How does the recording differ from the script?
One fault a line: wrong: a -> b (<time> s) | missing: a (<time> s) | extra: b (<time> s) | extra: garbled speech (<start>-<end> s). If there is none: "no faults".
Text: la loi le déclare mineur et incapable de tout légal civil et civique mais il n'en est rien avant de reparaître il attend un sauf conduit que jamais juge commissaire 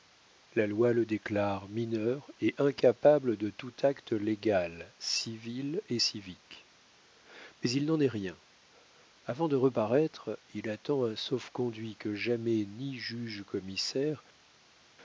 extra: acte (3.8 s)
extra: ni (12.6 s)